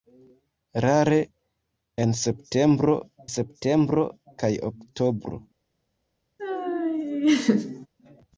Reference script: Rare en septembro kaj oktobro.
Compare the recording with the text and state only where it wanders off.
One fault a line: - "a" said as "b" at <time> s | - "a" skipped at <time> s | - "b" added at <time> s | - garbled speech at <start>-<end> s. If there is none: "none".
- "septembro" added at 3.3 s